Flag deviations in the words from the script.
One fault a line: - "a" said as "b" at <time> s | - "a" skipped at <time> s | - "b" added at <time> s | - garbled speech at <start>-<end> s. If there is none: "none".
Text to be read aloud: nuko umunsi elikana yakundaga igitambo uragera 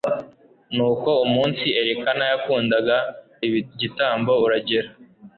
none